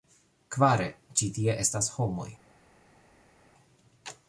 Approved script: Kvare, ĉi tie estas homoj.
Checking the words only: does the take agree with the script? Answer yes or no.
yes